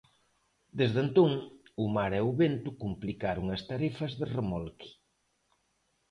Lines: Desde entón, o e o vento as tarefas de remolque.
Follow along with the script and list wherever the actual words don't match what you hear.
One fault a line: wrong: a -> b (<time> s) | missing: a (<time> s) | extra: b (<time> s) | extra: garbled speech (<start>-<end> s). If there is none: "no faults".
extra: mar (1.9 s)
extra: complicaron (2.8 s)